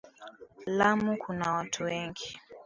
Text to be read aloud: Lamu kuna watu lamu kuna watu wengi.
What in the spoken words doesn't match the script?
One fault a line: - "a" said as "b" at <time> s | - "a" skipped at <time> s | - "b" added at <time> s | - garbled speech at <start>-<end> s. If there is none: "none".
- "lamu kuna watu" skipped at 1.8 s